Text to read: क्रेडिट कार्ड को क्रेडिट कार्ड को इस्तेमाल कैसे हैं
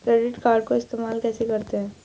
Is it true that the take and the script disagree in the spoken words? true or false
true